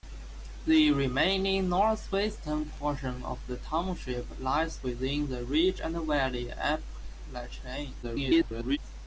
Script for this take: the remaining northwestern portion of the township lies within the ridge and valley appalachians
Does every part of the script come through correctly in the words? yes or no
no